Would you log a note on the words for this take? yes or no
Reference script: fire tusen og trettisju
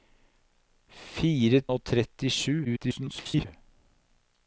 yes